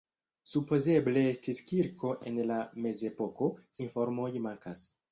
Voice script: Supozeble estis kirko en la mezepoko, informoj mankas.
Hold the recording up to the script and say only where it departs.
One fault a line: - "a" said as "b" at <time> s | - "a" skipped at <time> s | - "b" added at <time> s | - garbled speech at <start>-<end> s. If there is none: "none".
none